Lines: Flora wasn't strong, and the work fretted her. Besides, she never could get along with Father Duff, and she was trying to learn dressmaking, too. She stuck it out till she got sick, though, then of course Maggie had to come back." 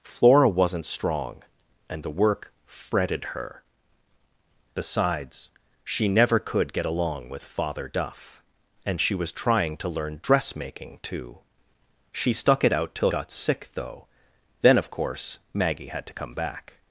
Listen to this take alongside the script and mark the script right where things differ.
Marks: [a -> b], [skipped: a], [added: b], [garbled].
Flora wasn't strong, and the work fretted her. Besides, she never could get along with Father Duff, and she was trying to learn dressmaking, too. She stuck it out till [skipped: she] got sick, though, then of course Maggie had to come back."